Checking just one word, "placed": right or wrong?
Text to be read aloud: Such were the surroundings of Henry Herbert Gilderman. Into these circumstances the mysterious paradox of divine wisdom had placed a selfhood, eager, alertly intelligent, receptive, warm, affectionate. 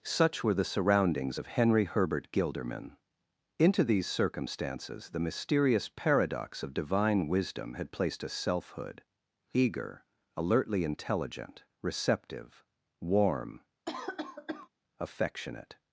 right